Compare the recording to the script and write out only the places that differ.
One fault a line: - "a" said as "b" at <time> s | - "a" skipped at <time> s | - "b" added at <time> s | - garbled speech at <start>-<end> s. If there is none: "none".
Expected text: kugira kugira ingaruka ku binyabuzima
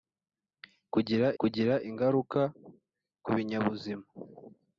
none